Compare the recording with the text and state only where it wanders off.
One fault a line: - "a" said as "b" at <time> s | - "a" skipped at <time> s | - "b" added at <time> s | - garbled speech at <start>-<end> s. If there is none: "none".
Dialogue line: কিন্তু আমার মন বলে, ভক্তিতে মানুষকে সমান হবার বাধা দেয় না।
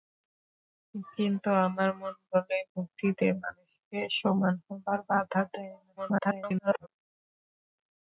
- garbled speech at 6.0-6.9 s